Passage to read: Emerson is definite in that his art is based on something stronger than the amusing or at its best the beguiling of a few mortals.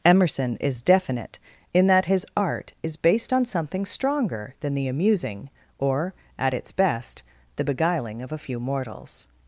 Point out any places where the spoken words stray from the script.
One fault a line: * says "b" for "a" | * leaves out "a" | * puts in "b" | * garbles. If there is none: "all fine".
all fine